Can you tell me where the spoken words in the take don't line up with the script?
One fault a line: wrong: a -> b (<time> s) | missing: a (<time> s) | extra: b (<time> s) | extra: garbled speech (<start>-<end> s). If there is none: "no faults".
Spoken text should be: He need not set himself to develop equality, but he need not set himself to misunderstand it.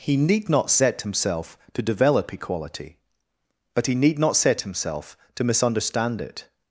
no faults